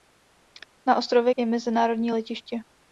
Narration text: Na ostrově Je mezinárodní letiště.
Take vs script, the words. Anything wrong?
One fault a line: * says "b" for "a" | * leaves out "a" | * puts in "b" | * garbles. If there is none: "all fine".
all fine